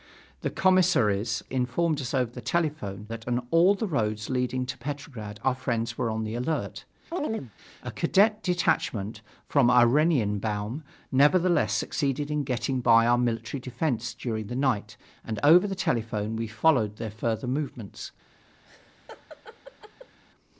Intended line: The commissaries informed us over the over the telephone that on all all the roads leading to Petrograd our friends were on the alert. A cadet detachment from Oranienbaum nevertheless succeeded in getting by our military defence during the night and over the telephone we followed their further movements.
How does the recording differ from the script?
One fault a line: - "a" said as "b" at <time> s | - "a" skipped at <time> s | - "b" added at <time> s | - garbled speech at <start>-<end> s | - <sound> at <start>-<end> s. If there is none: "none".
- "over the" skipped at 2.4 s
- "all" skipped at 3.8 s
- chirp at 7.1-7.5 s
- laugh at 18.6-20.2 s